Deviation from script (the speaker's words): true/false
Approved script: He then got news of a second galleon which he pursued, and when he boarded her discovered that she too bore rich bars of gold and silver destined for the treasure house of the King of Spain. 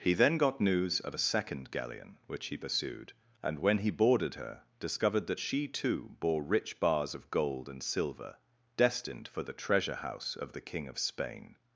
false